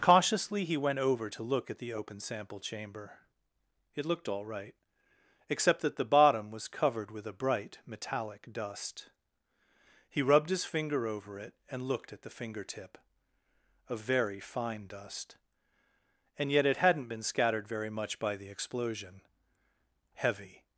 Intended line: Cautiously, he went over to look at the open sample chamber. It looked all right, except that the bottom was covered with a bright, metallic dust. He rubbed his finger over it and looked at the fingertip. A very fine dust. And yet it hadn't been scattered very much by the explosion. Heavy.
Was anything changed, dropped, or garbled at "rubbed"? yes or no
no